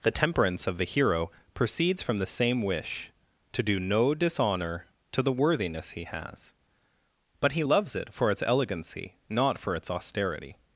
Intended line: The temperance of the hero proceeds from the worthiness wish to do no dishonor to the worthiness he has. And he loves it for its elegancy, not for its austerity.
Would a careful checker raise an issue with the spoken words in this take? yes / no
yes